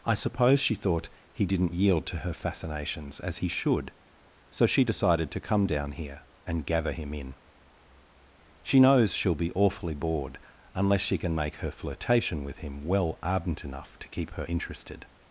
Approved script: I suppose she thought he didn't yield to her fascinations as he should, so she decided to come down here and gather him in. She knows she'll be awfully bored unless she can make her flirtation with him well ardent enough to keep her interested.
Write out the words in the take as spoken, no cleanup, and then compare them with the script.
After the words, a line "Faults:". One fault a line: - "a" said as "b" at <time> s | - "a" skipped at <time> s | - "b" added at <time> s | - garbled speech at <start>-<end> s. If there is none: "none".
I suppose she thought he didn't yield to her fascinations as he should, so she decided to come down here and gather him in. She knows she'll be awfully bored unless she can make her flirtation with him well ardent enough to keep her interested.
Faults:
none